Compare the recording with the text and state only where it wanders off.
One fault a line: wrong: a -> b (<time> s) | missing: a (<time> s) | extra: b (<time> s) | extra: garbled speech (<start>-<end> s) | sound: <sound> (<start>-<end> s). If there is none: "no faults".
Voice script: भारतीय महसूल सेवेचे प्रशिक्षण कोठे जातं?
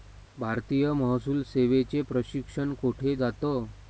no faults